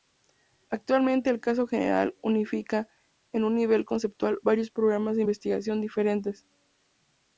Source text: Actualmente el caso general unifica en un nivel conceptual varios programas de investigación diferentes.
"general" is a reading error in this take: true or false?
false